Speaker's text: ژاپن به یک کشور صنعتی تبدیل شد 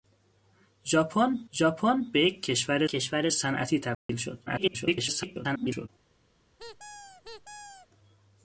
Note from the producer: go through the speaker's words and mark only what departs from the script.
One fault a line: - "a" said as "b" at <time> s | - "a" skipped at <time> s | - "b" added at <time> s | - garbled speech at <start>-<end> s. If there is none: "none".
- "ژاپن" added at 1.5 s
- "کشور" added at 2.9 s
- garbled speech at 4.5-5.9 s